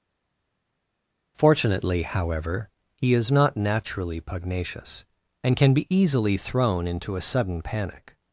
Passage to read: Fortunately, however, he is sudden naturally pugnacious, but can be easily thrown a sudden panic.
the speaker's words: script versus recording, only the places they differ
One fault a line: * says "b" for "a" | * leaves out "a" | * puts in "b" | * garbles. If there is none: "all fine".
* says "not" for "sudden"
* says "and" for "but"
* puts in "into"